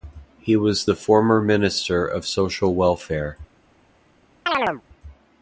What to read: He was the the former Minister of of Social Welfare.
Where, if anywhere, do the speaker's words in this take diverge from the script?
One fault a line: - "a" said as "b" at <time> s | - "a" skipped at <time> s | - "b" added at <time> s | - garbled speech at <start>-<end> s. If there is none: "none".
- "the" skipped at 0.9 s
- "of" skipped at 2.2 s